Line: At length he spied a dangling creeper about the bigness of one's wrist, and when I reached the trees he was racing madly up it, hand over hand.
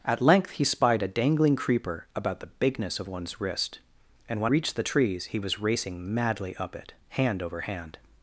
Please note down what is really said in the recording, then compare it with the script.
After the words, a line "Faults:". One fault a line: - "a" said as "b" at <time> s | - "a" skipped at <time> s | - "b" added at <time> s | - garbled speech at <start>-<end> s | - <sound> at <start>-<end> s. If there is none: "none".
At length he spied a dangling creeper about the bigness of one's wrist, and when reached the trees he was racing madly up it, hand over hand.
Faults:
- "I" skipped at 4.5 s